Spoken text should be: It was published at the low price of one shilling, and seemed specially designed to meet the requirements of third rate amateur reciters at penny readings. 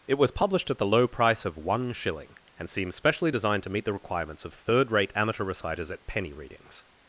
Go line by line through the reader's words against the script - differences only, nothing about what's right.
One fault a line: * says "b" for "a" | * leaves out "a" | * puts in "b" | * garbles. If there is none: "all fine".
* says "seems" for "seemed"